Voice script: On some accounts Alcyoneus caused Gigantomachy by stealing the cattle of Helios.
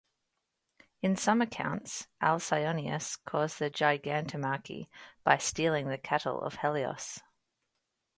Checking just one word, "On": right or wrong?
wrong